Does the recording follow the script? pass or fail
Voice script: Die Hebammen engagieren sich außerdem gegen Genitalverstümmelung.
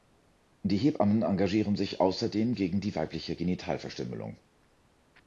fail